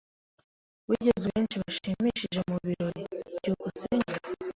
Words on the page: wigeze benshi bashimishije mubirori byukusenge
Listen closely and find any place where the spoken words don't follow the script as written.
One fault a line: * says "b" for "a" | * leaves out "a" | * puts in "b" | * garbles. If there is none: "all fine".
all fine